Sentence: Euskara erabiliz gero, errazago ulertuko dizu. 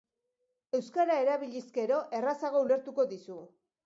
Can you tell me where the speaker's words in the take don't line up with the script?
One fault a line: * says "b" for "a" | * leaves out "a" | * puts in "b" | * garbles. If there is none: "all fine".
all fine